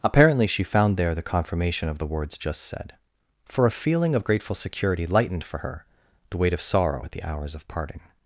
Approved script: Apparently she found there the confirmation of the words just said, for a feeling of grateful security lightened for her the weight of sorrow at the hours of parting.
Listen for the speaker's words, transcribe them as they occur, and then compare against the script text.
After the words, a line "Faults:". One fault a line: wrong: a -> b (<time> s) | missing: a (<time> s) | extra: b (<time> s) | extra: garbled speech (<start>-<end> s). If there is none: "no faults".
Apparently she found there the confirmation of the words just said, for a feeling of grateful security lightened for her the weight of sorrow at the hours of parting.
Faults:
no faults